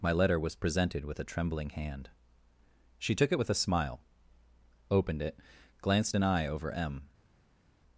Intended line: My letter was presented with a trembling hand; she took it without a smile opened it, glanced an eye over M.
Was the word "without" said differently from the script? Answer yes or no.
yes